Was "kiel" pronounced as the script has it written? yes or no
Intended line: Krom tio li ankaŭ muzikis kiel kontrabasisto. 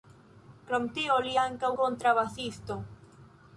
no